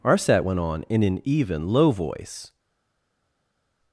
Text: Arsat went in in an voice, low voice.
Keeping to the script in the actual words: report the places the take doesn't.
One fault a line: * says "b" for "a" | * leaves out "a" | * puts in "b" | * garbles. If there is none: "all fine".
* says "on" for "in"
* says "even" for "voice"